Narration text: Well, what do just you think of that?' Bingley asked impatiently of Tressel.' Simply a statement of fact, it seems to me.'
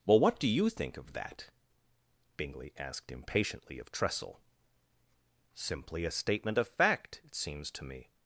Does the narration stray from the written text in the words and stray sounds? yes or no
yes